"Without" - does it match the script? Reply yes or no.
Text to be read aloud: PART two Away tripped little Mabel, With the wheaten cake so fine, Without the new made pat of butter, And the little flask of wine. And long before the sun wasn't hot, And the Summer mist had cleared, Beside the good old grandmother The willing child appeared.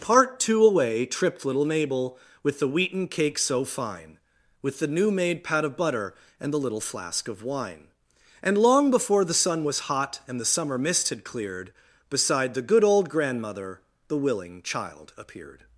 no